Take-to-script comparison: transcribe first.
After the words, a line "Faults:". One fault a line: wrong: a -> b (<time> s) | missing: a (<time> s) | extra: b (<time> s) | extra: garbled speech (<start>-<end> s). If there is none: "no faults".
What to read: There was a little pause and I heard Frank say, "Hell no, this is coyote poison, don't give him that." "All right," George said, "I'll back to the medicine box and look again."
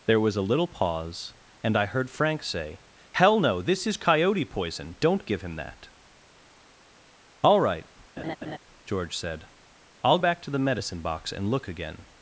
There was a little pause and I heard Frank say, "Hell no, this is coyote poison, don't give him that." "All right," George said, "I'll back to the medicine box and look again."
Faults:
no faults